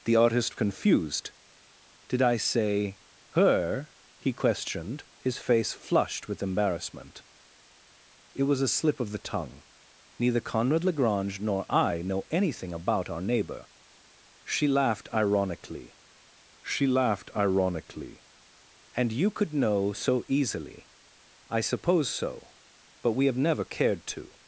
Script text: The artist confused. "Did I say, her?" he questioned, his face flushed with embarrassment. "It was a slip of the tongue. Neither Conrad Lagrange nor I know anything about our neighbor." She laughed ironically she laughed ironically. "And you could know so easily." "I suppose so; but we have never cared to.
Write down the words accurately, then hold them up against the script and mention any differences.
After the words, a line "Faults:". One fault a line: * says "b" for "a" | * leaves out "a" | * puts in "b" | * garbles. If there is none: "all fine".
The artist confused. "Did I say, her?" he questioned, his face flushed with embarrassment. "It was a slip of the tongue. Neither Conrad Lagrange nor I know anything about our neighbor." She laughed ironically she laughed ironically. "And you could know so easily." "I suppose so; but we have never cared to.
Faults:
all fine